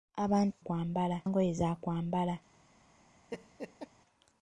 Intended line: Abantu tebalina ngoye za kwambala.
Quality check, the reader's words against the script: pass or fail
fail